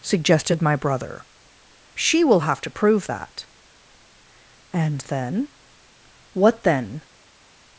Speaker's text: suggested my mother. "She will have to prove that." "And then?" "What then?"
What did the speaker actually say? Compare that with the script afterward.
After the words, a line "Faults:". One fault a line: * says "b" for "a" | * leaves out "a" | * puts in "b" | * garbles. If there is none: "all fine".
suggested my brother. "She will have to prove that." "And then?" "What then?"
Faults:
* says "brother" for "mother"